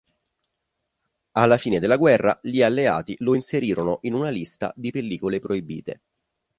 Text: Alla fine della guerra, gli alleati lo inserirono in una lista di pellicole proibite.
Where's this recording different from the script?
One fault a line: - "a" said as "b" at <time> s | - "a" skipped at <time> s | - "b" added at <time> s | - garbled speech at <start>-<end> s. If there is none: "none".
none